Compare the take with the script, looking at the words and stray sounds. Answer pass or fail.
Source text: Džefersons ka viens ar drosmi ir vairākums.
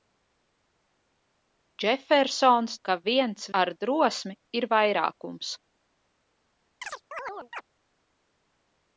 fail